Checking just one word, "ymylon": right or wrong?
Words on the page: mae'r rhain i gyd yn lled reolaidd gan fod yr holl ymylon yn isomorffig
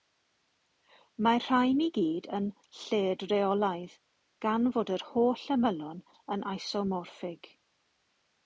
right